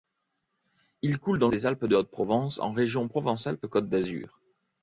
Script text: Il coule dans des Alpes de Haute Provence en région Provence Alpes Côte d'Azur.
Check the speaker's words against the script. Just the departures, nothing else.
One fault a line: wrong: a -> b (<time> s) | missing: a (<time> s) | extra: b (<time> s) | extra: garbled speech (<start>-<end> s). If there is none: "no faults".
no faults